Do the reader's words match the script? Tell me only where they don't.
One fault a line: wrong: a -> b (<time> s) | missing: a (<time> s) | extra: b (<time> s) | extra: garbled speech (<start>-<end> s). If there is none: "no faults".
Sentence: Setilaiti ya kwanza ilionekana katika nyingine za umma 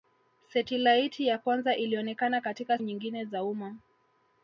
no faults